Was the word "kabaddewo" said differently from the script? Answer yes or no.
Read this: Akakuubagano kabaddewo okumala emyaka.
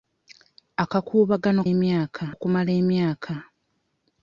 yes